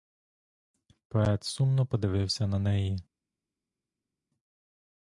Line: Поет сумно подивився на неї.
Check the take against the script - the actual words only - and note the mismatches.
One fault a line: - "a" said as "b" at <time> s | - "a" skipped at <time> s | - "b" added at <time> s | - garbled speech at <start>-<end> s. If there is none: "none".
none